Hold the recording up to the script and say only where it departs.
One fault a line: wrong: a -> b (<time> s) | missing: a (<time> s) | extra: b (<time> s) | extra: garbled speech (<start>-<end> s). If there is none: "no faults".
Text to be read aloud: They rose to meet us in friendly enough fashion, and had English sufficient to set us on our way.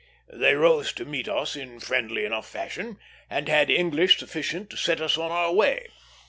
no faults